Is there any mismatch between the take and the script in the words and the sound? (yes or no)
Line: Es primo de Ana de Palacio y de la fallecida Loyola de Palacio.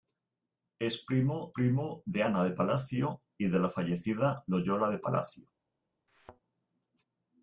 yes